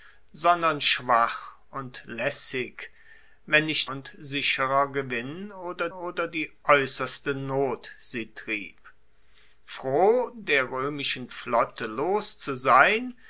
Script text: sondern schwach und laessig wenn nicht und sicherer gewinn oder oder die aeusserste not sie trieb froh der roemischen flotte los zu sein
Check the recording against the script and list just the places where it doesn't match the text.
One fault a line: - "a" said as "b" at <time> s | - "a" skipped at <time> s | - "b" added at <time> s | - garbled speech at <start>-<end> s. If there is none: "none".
none